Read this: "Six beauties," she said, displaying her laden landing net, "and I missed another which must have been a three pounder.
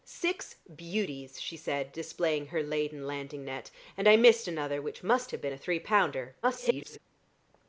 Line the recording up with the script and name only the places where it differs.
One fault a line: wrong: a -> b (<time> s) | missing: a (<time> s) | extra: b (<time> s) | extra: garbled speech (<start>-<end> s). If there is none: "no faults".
extra: garbled speech (6.4-7.0 s)